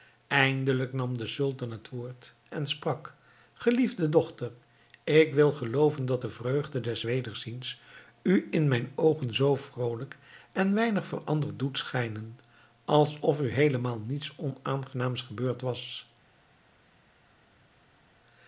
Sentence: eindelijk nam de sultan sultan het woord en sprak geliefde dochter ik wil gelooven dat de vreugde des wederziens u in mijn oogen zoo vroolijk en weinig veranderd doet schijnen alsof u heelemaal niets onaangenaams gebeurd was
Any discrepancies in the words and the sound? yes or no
yes